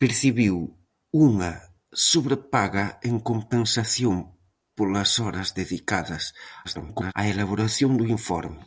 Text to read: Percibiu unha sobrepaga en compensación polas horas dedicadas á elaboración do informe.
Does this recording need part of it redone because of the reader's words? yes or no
yes